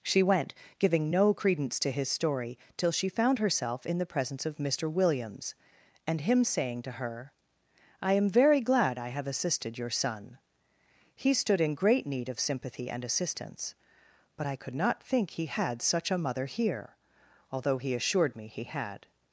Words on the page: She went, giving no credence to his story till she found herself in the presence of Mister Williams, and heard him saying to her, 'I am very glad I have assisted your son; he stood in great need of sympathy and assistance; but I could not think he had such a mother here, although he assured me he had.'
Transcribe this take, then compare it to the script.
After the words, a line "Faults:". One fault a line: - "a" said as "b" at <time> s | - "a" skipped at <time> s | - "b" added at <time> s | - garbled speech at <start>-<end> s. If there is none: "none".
She went, giving no credence to his story till she found herself in the presence of Mister Williams, and him saying to her, 'I am very glad I have assisted your son; he stood in great need of sympathy and assistance; but I could not think he had such a mother here, although he assured me he had.'
Faults:
- "heard" skipped at 6.2 s